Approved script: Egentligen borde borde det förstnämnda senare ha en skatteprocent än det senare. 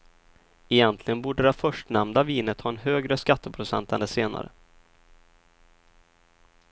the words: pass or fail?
fail